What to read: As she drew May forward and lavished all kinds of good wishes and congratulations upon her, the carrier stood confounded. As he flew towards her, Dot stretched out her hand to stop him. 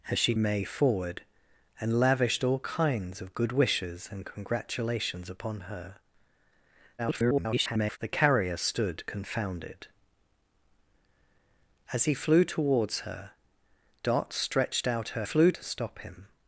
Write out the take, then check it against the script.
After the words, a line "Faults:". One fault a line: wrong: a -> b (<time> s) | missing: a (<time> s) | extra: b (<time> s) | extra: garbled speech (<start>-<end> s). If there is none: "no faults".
As she May forward and lavished all kinds of good wishes and congratulations upon her, [garbled] the carrier stood confounded. As he flew towards her, Dot stretched out her flew to stop him.
Faults:
missing: drew (0.3 s)
extra: garbled speech (7.0-8.0 s)
wrong: hand -> flew (15.2 s)